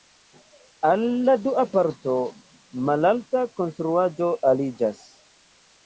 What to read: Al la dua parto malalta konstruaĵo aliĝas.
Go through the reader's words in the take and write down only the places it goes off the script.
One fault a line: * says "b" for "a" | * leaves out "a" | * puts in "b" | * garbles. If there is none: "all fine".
all fine